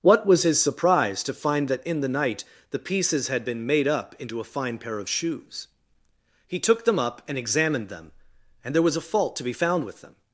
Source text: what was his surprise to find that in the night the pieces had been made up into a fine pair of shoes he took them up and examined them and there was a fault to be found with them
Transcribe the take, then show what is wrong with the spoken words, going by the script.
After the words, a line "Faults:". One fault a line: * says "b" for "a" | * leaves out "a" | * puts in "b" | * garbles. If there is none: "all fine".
what was his surprise to find that in the night the pieces had been made up into a fine pair of shoes he took them up and examined them and there was a fault to be found with them
Faults:
all fine